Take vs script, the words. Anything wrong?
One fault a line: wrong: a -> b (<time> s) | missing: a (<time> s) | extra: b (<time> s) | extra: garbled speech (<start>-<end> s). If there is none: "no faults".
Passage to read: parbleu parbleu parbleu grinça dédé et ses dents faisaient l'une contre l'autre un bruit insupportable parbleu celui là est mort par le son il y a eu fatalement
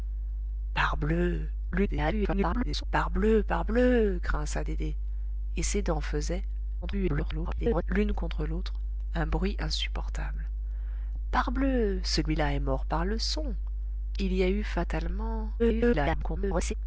extra: garbled speech (1.7-2.8 s)
extra: garbled speech (6.8-7.8 s)
extra: garbled speech (15.6-16.7 s)